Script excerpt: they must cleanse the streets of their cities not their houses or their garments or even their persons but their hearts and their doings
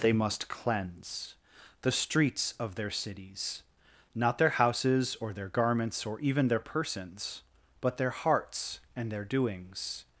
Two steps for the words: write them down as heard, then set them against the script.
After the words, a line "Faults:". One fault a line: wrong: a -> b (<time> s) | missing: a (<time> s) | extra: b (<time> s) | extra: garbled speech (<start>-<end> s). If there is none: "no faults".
they must cleanse the streets of their cities not their houses or their garments or even their persons but their hearts and their doings
Faults:
no faults